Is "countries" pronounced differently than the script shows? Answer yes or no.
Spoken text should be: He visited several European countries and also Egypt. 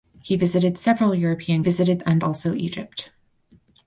yes